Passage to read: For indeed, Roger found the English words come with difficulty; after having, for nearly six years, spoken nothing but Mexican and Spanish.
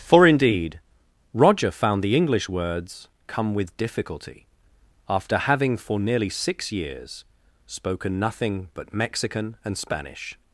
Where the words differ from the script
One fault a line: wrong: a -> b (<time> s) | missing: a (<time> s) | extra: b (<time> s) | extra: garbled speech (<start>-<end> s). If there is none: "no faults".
no faults